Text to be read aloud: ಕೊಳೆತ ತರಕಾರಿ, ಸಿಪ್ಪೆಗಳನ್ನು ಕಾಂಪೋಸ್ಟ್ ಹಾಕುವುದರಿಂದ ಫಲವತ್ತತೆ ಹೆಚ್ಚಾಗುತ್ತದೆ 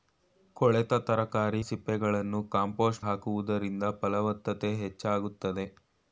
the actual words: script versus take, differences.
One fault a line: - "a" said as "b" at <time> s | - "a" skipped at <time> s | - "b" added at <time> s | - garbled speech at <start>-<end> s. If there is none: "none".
none